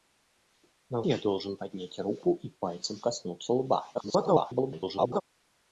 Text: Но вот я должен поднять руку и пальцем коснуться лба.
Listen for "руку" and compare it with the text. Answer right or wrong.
right